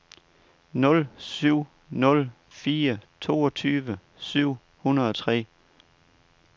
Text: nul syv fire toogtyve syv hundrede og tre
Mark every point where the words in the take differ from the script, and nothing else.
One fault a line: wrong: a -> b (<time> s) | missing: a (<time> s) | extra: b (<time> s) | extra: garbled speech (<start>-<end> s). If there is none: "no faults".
extra: nul (1.9 s)